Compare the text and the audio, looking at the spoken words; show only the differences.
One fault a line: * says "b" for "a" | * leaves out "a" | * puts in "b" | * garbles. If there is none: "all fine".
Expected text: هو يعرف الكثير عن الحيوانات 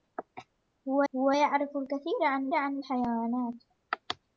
* puts in "هو"
* puts in "عن"